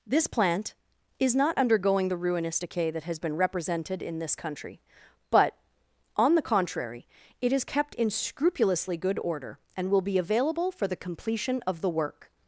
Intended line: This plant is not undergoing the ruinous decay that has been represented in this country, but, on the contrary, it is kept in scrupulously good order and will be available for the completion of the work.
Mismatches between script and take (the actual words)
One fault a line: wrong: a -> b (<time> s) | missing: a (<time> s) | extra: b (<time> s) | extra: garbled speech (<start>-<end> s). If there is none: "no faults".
no faults